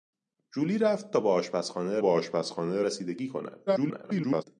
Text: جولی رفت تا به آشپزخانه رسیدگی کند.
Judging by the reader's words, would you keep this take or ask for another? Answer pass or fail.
fail